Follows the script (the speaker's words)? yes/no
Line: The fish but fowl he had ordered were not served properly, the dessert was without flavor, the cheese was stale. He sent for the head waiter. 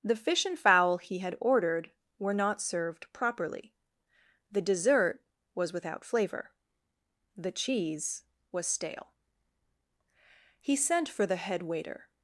no